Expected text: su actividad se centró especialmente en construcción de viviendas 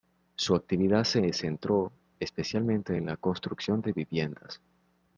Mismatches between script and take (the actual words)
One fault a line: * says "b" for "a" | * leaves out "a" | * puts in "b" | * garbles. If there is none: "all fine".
* puts in "la"